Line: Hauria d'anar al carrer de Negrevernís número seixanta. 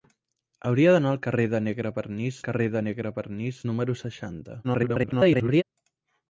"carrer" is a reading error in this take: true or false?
false